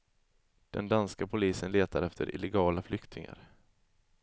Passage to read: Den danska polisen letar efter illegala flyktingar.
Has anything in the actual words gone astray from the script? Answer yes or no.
no